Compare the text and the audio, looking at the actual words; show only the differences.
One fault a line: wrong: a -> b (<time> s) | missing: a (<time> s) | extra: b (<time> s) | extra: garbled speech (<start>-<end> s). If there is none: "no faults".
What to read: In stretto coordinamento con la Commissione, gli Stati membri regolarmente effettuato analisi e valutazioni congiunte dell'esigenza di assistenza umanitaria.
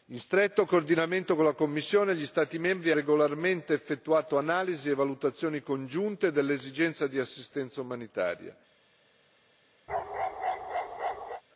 no faults